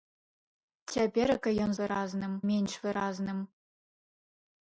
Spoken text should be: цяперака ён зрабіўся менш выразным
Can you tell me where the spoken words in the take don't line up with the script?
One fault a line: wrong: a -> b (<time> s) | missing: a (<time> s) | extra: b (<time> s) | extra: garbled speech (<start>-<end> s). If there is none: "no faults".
wrong: зрабіўся -> выразным (1.8 s)